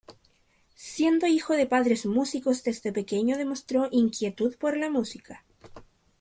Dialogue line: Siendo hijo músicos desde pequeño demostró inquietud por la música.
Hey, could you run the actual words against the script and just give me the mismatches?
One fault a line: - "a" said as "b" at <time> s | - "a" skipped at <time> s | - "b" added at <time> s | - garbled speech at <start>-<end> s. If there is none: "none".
- "de padres" added at 1.5 s